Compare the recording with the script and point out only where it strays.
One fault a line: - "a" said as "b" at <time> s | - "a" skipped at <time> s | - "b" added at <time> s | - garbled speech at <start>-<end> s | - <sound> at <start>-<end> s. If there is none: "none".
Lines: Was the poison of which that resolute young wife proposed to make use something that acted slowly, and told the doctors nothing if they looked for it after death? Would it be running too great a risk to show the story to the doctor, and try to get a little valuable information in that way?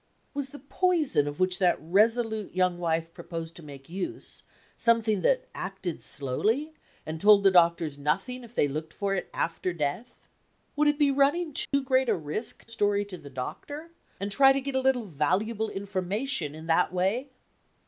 - dropout at 11.6-11.7 s
- "to show the" skipped at 12.7 s